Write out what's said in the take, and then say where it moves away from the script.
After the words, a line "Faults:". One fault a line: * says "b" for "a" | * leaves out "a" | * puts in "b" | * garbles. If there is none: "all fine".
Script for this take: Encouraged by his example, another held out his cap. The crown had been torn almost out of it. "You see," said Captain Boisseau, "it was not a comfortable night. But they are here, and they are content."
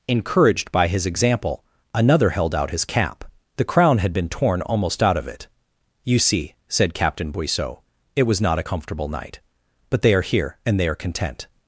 Encouraged by his example, another held out his cap. The crown had been torn almost out of it. "You see," said Captain Boisseau, "it was not a comfortable night. But they are here, and they are content."
Faults:
all fine